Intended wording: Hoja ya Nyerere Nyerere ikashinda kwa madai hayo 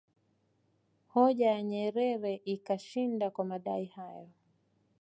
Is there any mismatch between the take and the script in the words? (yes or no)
yes